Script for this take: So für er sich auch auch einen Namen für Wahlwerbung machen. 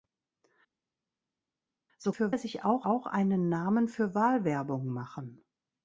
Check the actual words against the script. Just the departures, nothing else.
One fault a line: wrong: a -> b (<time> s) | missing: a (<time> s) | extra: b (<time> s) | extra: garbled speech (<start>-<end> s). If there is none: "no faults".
no faults